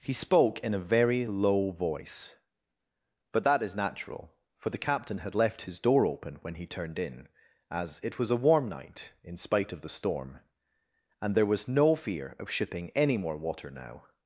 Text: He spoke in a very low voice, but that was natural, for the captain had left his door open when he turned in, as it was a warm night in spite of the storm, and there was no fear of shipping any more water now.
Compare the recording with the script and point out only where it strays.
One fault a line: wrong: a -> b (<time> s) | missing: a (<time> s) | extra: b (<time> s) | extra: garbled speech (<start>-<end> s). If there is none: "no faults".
wrong: was -> is (3.6 s)